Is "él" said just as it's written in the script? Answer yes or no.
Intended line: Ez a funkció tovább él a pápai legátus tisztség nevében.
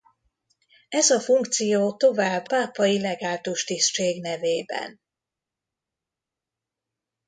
no